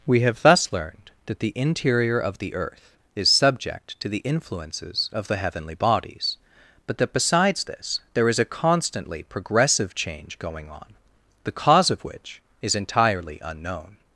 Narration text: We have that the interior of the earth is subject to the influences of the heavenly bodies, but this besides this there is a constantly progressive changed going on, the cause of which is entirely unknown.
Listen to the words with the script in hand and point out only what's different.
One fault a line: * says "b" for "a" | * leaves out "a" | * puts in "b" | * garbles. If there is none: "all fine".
* puts in "thus learned"
* says "that" for "this"
* says "change" for "changed"